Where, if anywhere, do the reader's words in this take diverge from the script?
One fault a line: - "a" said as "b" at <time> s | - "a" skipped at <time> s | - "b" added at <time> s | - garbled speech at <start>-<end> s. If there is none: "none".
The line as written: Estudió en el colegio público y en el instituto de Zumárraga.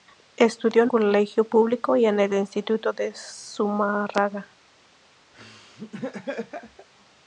- "el" skipped at 0.9 s